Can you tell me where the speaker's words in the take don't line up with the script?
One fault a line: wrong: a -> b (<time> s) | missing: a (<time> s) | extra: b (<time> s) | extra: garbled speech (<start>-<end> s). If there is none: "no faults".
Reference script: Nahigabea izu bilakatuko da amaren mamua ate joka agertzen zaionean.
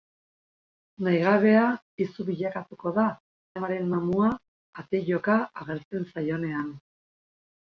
no faults